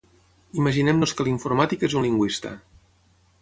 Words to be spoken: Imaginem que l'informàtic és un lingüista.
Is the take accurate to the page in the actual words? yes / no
no